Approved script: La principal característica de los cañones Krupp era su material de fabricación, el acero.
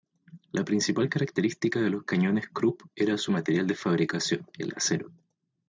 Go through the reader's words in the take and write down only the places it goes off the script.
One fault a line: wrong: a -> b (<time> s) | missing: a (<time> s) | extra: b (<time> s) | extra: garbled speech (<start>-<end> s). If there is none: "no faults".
no faults